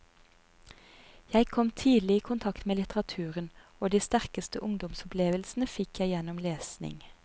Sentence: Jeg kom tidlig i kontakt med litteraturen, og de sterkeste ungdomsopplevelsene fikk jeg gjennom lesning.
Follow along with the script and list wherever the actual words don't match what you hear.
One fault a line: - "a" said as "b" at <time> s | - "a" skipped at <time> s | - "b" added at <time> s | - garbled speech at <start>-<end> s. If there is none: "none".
none